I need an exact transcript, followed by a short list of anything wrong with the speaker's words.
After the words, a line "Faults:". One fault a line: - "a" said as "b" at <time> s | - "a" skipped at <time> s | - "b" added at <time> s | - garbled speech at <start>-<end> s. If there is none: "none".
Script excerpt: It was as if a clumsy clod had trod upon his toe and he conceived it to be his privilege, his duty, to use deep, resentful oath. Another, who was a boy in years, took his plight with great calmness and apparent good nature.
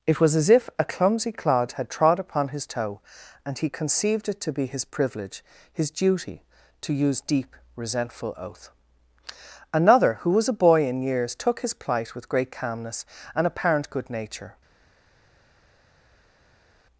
It was as if a clumsy clod had trod upon his toe and he conceived it to be his privilege, his duty, to use deep, resentful oath. Another, who was a boy in years, took his plight with great calmness and apparent good nature.
Faults:
none